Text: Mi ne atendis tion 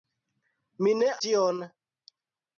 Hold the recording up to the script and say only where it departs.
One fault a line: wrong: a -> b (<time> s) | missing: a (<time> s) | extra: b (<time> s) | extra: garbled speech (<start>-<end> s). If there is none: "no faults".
missing: atendis (1.1 s)